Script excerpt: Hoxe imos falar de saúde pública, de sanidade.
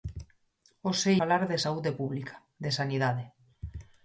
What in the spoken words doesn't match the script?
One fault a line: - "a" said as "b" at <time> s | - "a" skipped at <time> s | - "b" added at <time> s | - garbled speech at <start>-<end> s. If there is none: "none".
- "imos" skipped at 1.1 s